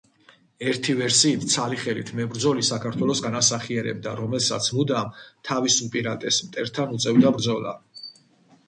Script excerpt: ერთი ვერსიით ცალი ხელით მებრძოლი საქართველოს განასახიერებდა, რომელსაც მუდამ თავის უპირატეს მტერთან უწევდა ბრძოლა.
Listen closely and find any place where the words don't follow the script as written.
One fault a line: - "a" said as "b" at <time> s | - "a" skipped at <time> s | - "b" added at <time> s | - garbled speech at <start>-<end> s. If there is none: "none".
none